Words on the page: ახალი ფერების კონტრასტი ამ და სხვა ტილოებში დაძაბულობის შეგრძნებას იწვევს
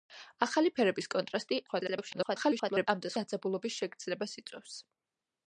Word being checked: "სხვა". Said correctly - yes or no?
no